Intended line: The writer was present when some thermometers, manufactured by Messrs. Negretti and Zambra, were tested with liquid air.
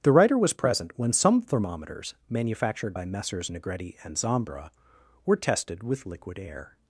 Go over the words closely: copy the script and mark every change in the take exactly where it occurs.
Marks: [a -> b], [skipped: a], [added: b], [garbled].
The writer was present when some thermometers, manufactured by Messrs. Negretti and Zambra, were tested with liquid air.